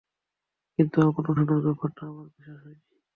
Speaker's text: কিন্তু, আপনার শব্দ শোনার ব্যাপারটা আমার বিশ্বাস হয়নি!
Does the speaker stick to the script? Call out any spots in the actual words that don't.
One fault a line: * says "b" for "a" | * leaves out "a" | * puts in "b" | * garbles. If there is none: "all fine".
* leaves out "শব্দ"